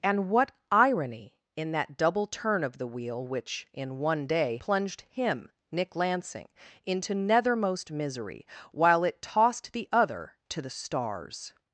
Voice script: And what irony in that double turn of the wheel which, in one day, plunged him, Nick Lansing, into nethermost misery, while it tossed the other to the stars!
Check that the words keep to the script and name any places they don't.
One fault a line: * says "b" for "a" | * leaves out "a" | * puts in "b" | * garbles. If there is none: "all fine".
all fine